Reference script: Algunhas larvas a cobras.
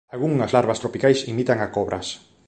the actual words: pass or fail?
fail